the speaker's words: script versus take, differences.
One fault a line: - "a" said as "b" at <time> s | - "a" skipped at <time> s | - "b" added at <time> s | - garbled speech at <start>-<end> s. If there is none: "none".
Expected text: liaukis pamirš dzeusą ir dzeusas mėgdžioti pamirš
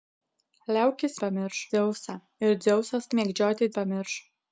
none